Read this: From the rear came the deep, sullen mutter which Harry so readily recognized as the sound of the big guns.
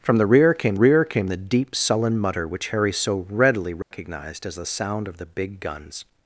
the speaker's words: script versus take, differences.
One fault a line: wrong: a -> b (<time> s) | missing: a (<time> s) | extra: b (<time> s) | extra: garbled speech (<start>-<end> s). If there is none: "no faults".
extra: rear came (0.7 s)